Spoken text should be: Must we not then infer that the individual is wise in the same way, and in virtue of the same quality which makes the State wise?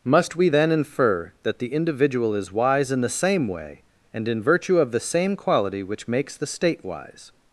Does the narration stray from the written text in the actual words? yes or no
yes